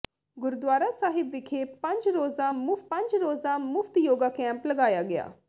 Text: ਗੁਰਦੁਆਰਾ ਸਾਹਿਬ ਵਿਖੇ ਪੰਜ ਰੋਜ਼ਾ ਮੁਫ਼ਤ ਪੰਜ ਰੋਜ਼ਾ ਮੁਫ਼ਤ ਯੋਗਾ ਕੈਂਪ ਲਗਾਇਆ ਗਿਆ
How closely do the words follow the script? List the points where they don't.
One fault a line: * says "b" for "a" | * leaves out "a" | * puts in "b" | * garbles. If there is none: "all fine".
all fine